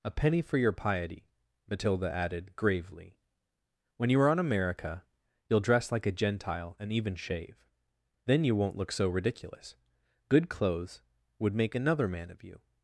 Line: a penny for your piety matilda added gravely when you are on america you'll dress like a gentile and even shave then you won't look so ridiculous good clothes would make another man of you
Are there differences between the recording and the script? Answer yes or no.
no